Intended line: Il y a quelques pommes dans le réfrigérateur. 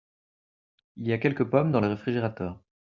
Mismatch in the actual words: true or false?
false